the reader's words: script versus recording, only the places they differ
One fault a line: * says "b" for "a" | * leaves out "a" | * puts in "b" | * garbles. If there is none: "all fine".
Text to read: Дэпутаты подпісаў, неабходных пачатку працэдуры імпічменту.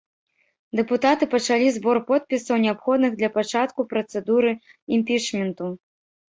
* puts in "пачалі збор"
* puts in "для"